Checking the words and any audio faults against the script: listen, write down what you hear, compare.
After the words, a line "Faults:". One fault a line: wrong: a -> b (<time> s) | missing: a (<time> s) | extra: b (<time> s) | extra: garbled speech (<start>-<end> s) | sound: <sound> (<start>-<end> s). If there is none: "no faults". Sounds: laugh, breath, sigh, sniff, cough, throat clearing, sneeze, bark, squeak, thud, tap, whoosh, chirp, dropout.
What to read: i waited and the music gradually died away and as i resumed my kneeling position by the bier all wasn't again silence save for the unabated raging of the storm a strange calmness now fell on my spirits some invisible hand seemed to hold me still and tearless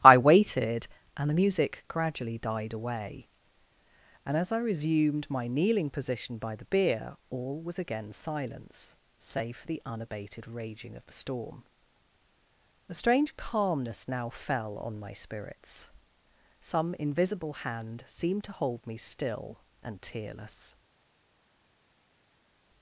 i waited and the music gradually died away and as i resumed my kneeling position by the bier all was again silence save for the unabated raging of the storm a strange calmness now fell on my spirits some invisible hand seemed to hold me still and tearless
Faults:
wrong: wasn't -> was (7.6 s)